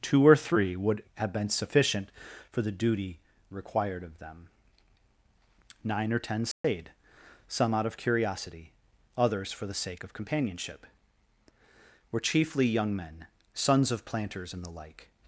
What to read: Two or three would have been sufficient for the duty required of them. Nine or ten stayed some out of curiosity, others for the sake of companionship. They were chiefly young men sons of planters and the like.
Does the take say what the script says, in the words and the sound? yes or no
no